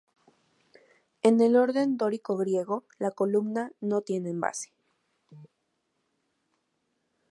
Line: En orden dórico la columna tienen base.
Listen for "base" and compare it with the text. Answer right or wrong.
right